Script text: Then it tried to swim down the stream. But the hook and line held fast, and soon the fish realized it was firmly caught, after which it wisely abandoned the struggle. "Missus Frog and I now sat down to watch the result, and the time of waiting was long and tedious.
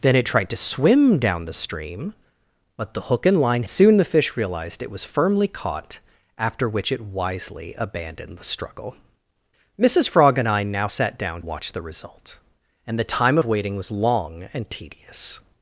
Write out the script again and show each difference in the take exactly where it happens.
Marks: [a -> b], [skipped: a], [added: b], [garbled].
Then it tried to swim down the stream. But the hook and line [skipped: held fast, and] soon the fish realized it was firmly caught, after which it wisely abandoned the struggle. "Missus Frog and I now sat down [skipped: to] watch the result, and the time [skipped: of] waiting was long and tedious.